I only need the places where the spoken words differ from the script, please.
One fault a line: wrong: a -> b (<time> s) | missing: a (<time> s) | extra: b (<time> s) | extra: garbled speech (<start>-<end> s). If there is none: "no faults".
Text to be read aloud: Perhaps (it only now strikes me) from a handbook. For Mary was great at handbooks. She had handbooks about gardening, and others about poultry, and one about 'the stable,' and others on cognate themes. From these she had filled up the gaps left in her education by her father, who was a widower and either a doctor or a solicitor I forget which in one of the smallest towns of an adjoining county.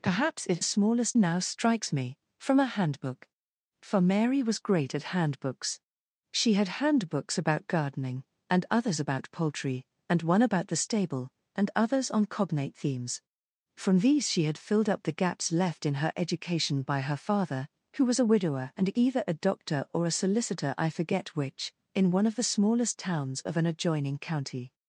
wrong: only -> smallest (0.6 s)